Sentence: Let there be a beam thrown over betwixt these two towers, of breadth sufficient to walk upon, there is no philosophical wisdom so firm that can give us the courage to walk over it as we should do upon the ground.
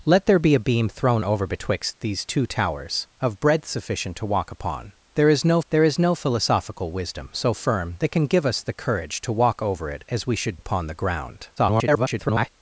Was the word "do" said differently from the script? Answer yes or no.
yes